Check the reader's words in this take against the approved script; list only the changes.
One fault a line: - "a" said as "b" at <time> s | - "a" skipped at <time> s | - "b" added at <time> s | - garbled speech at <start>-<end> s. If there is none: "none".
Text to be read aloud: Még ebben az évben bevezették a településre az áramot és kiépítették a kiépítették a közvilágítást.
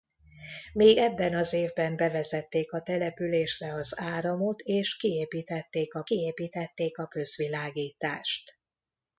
none